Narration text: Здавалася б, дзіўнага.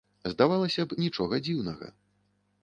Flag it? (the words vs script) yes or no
yes